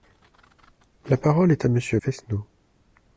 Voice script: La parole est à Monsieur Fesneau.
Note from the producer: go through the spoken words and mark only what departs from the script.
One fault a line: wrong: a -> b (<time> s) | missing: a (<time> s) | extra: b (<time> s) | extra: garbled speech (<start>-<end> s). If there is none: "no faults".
no faults